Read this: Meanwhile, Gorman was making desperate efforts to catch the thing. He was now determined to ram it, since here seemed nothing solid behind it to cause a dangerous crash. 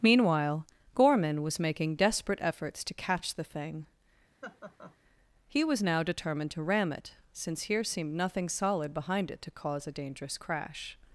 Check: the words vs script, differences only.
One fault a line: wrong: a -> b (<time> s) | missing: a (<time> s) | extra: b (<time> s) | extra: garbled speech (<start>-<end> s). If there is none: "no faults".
no faults